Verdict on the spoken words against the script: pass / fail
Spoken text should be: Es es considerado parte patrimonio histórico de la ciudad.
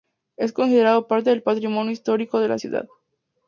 fail